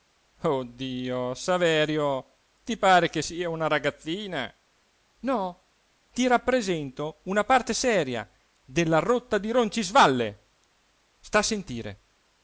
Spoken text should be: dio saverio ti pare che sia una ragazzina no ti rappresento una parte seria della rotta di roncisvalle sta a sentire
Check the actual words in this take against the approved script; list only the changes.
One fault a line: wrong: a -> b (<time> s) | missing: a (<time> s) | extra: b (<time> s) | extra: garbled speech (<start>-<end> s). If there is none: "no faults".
no faults